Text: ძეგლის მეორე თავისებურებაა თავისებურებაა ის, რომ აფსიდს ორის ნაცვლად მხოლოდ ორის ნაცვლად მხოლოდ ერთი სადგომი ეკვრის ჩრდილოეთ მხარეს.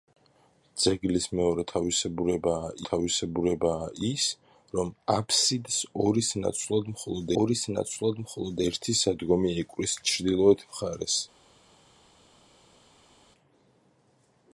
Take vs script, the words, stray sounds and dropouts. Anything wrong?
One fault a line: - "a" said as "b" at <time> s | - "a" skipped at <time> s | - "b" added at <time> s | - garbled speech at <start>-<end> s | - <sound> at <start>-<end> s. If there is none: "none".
none